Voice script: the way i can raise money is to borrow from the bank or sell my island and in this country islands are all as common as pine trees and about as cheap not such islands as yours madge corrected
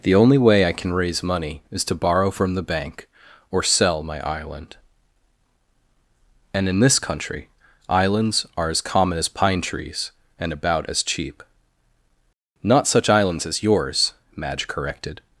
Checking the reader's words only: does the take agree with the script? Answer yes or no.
no